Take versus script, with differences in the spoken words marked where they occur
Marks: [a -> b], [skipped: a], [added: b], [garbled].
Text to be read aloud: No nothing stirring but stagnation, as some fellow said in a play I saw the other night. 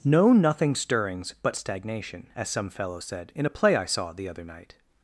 No nothing [stirring -> stirrings] but stagnation, as some fellow said in a play I saw the other night.